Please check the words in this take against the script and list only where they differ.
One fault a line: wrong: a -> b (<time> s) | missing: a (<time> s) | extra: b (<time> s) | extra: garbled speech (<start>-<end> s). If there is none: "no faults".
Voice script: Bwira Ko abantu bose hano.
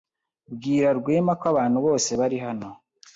extra: Rwema (1.0 s)
extra: bari (2.2 s)